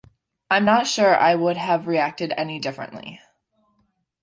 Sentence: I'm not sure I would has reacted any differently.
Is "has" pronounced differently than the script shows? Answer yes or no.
yes